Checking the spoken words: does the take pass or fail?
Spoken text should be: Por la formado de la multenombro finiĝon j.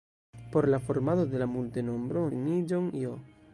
pass